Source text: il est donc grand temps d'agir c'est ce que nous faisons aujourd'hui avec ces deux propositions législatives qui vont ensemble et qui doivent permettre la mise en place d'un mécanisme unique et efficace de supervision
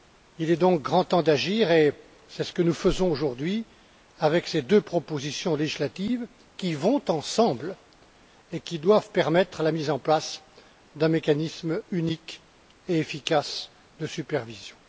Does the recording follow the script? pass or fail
fail